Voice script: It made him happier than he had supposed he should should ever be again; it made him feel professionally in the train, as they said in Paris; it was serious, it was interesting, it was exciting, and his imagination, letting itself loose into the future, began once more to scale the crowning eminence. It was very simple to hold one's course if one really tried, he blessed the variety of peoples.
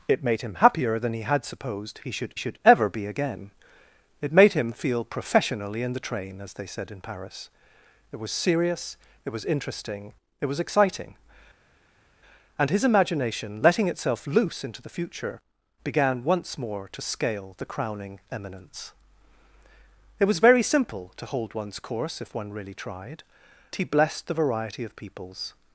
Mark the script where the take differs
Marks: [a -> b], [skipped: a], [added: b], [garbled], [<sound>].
It made him happier than he had supposed he should should ever be again; it made him feel professionally in the train, as they said in Paris; it was serious, it was interesting, it was exciting, and his imagination, letting itself loose into the future, began once more to scale the crowning eminence. It was very simple to hold one's course if one really tried, he blessed the variety of peoples.